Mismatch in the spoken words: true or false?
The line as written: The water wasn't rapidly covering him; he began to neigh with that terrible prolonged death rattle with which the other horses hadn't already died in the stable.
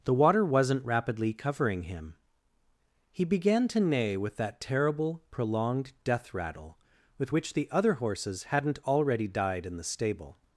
false